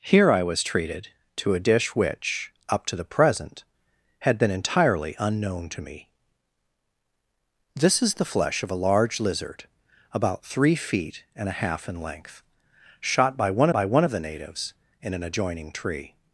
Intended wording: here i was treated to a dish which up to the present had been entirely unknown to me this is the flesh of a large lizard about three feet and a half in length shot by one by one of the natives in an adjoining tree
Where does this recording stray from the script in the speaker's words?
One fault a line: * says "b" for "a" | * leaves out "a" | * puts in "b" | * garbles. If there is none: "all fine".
all fine